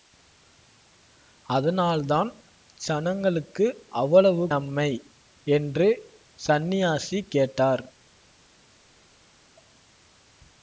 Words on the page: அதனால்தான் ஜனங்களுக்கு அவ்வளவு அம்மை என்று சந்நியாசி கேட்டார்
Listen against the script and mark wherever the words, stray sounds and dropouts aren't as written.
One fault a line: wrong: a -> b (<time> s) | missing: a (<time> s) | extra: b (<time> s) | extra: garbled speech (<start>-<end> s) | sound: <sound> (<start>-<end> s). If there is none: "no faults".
no faults